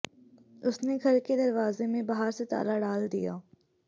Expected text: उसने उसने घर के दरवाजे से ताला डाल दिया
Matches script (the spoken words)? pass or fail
fail